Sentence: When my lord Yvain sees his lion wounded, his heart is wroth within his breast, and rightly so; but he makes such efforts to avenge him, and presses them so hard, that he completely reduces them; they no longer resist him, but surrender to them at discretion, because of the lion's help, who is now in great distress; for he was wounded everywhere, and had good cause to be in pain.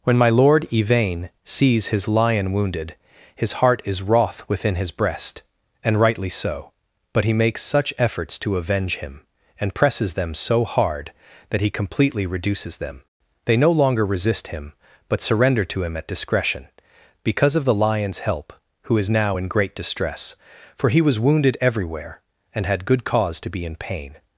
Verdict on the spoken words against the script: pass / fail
fail